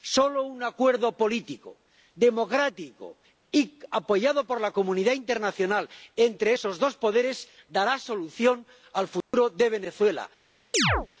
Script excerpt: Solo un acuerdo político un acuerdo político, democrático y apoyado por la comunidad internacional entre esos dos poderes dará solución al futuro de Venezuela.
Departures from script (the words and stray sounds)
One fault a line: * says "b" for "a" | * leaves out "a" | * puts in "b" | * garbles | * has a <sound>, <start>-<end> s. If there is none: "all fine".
* leaves out "un acuerdo político"
* has a dropout, 9.2-9.3 s
* has a chirp, 10.7-11.1 s